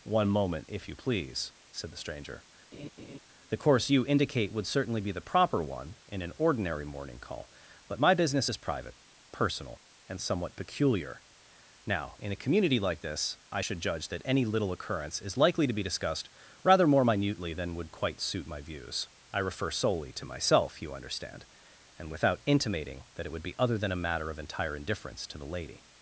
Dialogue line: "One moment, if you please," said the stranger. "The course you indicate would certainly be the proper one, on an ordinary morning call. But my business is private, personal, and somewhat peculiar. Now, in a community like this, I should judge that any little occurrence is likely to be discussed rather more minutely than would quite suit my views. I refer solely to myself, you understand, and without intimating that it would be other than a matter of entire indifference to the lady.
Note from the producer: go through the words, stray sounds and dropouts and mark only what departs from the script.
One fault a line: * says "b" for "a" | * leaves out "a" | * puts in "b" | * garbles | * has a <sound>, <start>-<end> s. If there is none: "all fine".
* has a laugh, 2.7-3.2 s
* says "in" for "on"